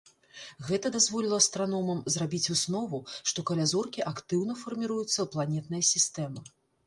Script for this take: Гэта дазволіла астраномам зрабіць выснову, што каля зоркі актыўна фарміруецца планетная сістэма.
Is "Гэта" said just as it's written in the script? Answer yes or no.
yes